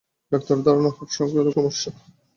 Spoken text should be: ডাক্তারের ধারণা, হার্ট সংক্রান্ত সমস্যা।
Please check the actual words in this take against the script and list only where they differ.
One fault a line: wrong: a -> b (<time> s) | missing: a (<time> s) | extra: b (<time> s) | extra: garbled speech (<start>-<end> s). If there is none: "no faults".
no faults